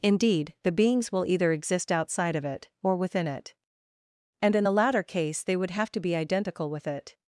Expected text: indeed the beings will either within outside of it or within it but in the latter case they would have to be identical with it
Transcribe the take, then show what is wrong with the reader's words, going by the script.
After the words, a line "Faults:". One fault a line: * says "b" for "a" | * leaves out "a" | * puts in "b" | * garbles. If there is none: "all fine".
indeed the beings will either exist outside of it or within it and in the latter case they would have to be identical with it
Faults:
* says "exist" for "within"
* says "and" for "but"